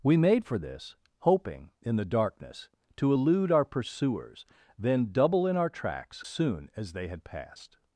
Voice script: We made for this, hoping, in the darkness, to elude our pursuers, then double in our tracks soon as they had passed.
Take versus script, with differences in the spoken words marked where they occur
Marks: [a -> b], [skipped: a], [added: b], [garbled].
We made for this, hoping, in the darkness, to elude our pursuers, then double in our tracks soon as they had passed.